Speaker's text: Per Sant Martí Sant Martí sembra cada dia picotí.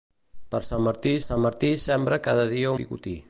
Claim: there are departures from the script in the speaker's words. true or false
false